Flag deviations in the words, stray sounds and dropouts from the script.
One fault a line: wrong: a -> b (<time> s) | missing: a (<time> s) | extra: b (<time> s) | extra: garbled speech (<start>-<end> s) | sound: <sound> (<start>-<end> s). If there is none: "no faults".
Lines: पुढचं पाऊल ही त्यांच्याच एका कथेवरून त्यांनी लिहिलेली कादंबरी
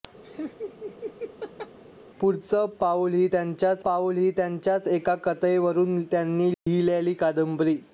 sound: laugh (0.2-1.8 s)
extra: पाऊल ही त्यांच्याच (3.8 s)
sound: dropout (6.5-6.7 s)